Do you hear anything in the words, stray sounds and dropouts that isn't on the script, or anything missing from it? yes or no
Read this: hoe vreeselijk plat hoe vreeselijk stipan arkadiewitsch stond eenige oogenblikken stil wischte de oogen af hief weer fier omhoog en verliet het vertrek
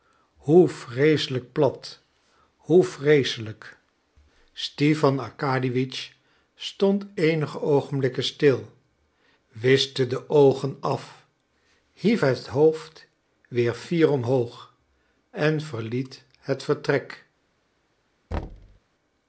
yes